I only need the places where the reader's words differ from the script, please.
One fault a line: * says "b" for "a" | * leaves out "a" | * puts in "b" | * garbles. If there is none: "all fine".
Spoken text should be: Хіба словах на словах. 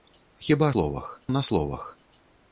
all fine